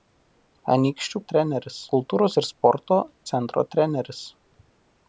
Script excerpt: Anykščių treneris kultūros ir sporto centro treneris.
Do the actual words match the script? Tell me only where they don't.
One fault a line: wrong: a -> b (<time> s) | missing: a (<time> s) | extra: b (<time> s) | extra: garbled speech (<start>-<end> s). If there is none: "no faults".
no faults